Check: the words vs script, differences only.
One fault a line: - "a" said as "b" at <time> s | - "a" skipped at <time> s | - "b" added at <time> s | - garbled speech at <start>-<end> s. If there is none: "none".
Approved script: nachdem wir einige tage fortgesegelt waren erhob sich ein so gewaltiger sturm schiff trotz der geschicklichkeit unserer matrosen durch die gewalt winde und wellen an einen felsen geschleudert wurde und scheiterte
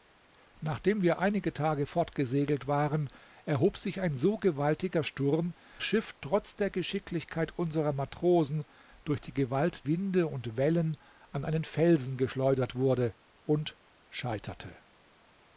none